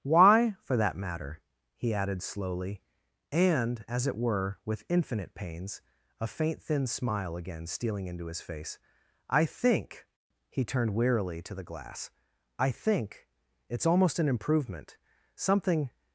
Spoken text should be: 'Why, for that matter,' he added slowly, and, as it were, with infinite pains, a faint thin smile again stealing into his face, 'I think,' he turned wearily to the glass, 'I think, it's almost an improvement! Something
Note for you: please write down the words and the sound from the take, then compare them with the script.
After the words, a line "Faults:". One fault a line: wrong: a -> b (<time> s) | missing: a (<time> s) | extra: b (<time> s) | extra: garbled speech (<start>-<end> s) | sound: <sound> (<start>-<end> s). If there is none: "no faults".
'Why, for that matter,' he added slowly, and, as it were, with infinite pains, a faint thin smile again stealing into his face, 'I think,' he turned wearily to the glass, 'I think, it's almost an improvement! Something
Faults:
no faults